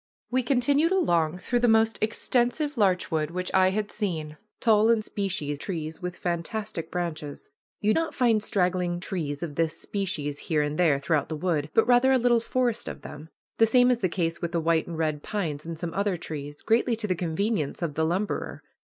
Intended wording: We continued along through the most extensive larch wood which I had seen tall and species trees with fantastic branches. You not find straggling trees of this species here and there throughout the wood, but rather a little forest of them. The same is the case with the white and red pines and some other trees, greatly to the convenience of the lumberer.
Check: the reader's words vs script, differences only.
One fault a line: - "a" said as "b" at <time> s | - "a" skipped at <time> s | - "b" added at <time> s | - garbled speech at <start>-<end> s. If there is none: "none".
none